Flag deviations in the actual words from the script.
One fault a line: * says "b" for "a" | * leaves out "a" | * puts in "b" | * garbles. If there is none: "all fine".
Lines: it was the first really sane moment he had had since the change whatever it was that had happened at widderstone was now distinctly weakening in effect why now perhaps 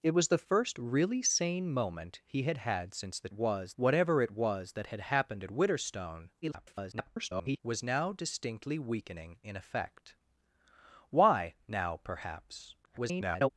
* says "was" for "change"
* garbles
* garbles